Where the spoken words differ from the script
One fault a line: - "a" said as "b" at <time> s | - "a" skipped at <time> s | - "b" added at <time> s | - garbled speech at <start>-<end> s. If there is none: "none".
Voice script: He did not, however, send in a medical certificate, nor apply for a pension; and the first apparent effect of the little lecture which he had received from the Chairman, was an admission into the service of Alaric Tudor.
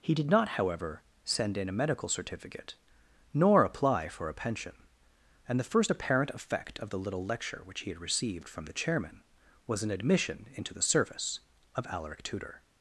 none